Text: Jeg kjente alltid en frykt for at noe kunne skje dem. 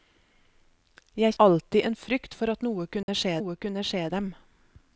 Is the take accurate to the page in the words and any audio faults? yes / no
no